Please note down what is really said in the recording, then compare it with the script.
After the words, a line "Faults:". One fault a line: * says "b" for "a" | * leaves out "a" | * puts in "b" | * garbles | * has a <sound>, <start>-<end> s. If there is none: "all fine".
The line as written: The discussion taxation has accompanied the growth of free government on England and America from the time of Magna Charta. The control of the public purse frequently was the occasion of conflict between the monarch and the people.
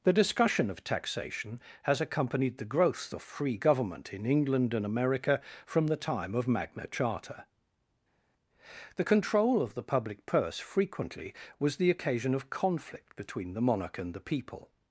The discussion of taxation has accompanied the growth of free government in England and America from the time of Magna Charta. The control of the public purse frequently was the occasion of conflict between the monarch and the people.
Faults:
* puts in "of"
* says "in" for "on"